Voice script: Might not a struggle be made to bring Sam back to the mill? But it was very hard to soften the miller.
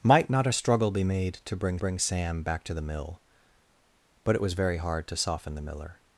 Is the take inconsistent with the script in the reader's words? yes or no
yes